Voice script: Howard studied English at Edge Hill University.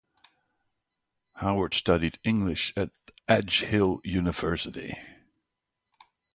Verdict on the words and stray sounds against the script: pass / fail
pass